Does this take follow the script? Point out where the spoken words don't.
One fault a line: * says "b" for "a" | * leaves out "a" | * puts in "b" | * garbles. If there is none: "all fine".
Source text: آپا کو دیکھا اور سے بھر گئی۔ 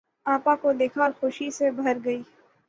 * puts in "خوشی"